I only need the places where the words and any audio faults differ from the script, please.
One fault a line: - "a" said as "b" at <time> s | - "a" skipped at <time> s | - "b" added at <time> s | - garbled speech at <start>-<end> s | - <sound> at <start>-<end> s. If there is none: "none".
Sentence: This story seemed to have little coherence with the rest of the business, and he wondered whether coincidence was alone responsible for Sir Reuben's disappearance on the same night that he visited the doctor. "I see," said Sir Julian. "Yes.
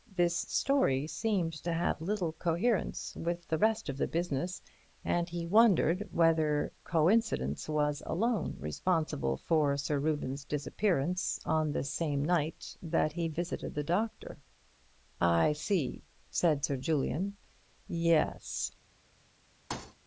- thud at 19.7-20.0 s